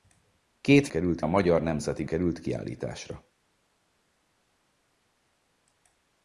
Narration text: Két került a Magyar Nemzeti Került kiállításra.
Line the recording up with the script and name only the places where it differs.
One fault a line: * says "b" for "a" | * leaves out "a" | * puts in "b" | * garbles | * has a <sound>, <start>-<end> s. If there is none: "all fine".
all fine